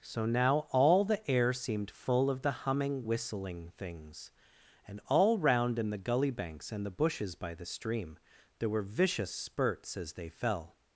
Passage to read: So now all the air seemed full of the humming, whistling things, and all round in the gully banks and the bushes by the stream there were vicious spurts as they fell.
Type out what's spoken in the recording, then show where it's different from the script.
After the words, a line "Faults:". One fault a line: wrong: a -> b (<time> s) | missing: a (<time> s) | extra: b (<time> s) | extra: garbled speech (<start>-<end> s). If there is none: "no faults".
So now all the air seemed full of the humming, whistling things, and all round in the gully banks and the bushes by the stream there were vicious spurts as they fell.
Faults:
no faults